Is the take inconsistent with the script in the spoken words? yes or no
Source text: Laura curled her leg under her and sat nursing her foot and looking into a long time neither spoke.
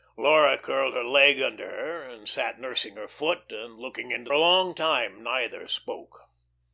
no